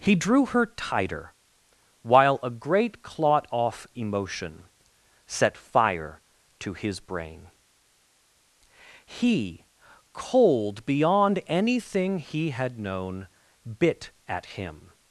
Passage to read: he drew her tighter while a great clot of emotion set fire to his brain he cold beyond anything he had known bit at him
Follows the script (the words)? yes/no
no